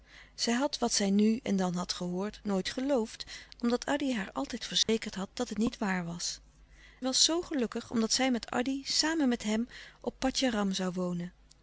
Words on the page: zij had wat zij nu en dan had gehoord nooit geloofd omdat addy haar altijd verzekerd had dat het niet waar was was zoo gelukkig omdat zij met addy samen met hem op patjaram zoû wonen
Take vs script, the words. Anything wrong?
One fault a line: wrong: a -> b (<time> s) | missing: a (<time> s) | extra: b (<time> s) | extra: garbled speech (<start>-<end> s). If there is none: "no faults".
no faults